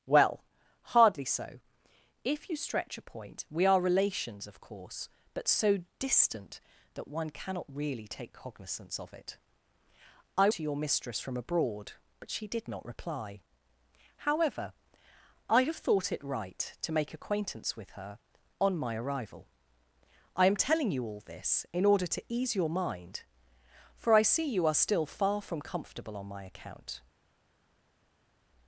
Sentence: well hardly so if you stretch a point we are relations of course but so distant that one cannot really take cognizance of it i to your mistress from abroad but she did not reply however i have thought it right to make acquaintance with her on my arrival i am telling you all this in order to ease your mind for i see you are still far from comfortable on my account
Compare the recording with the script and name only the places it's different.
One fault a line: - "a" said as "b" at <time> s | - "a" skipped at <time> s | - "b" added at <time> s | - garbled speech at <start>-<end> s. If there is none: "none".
none